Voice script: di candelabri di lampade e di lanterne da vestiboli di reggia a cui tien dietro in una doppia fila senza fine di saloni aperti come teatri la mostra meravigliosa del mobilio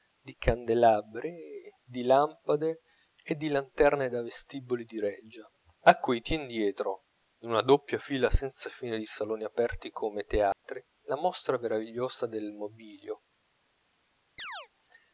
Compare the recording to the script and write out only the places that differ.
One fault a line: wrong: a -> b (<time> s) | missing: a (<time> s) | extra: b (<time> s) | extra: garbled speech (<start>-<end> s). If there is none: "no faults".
no faults